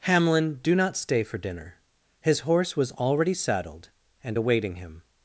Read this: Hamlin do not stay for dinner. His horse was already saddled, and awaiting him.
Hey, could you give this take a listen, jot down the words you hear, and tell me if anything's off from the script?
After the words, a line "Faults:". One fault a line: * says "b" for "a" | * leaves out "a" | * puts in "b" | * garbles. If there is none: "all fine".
Hamlin do not stay for dinner. His horse was already saddled, and awaiting him.
Faults:
all fine